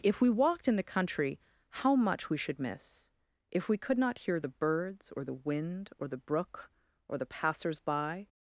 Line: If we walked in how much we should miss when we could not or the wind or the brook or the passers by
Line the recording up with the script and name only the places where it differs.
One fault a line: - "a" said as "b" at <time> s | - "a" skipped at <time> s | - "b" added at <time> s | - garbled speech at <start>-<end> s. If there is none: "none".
- "the country" added at 0.8 s
- "when" said as "if" at 3.5 s
- "hear the birds" added at 4.2 s